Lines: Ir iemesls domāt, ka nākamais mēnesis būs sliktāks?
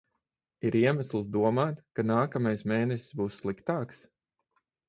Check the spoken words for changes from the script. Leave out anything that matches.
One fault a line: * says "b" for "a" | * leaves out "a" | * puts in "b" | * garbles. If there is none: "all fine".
all fine